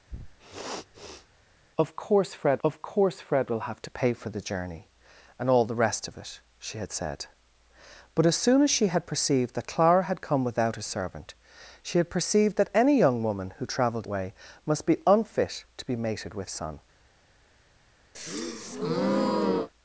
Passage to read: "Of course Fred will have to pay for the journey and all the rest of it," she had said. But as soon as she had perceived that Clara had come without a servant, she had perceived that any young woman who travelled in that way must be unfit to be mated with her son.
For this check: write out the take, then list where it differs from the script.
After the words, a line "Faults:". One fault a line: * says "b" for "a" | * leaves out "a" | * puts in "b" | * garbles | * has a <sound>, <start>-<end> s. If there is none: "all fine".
"Of course Fred of course Fred will have to pay for the journey and all the rest of it," she had said. But as soon as she had perceived that Clara had come without a servant, she had perceived that any young woman who travelled way must be unfit to be mated with son.
Faults:
* has a sniff, 0.1-1.3 s
* puts in "of course Fred"
* leaves out "in that"
* leaves out "her"
* has a breath, 18.1-19.7 s